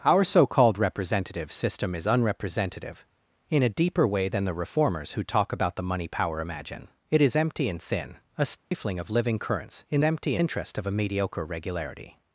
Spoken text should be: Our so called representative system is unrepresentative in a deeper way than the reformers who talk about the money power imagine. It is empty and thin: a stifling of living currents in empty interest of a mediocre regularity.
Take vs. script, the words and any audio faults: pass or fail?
fail